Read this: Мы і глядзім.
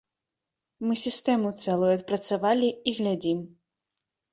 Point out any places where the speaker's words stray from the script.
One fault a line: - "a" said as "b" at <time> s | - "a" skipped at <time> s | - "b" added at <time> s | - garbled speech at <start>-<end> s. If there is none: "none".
- "сістэму цэлую адпрацавалі" added at 1.0 s